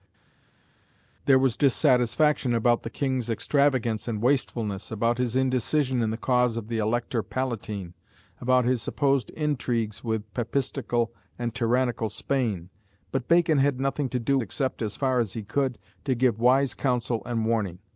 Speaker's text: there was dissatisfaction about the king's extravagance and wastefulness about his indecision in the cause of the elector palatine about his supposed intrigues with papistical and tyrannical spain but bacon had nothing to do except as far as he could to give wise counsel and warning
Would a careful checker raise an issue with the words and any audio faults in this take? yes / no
no